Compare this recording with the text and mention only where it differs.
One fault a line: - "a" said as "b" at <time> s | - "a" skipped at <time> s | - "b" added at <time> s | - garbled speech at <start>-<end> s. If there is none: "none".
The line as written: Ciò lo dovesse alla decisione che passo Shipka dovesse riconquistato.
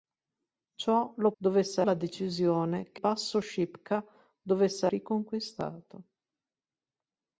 none